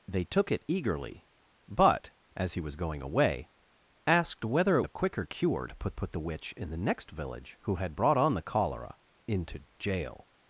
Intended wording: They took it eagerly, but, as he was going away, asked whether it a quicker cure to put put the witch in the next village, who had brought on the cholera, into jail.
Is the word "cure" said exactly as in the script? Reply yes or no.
yes